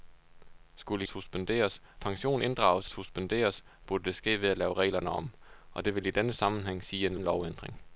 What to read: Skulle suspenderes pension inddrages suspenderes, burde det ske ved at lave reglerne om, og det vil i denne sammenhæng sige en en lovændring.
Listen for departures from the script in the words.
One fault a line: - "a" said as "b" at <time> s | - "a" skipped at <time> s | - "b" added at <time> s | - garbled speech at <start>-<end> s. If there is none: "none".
none